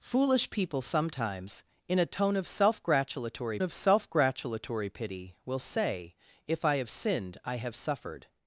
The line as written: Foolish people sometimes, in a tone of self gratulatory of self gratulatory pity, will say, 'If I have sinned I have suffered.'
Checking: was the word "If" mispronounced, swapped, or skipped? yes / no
no